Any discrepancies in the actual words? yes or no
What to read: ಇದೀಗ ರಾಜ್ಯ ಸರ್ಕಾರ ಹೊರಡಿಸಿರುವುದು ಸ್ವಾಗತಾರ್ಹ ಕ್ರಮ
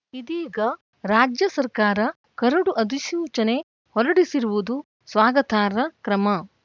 yes